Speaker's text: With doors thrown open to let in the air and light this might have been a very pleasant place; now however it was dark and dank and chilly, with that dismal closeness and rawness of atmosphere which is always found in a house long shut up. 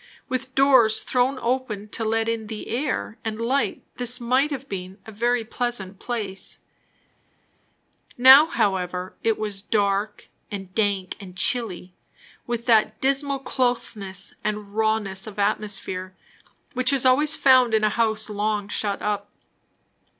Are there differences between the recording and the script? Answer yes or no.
no